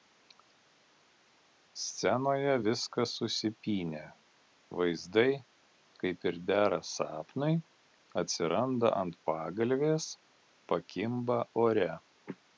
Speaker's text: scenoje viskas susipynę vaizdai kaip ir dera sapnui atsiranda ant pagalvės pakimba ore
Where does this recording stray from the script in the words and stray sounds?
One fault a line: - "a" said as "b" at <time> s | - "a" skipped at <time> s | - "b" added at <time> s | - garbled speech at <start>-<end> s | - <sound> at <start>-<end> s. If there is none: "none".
none